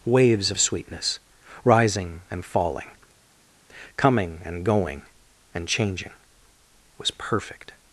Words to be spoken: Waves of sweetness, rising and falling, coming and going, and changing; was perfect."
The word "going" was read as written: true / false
true